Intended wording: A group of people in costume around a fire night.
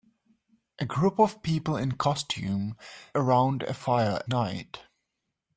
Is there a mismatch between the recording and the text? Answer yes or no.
no